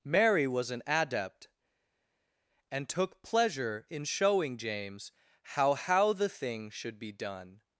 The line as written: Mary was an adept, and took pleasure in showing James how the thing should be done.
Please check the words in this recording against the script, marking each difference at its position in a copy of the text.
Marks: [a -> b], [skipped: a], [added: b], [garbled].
Mary was an adept, and took pleasure in showing James how [added: how] the thing should be done.